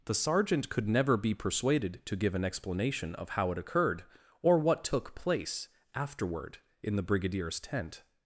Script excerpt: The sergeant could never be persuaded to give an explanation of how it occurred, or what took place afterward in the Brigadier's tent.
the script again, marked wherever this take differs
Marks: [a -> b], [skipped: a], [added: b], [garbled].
The sergeant could never be persuaded to give an explanation of how it occurred, or what took place afterward in the Brigadier's tent.